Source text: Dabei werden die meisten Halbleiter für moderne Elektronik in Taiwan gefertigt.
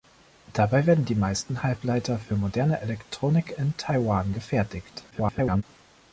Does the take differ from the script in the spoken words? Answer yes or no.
yes